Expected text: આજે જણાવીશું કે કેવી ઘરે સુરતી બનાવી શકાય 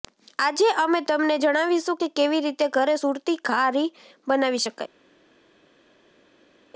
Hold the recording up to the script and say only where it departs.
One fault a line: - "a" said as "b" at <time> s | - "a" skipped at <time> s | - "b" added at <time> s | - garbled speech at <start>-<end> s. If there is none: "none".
- "અમે તમને" added at 0.8 s
- "રીતે" added at 2.4 s
- "ઘારી" added at 3.4 s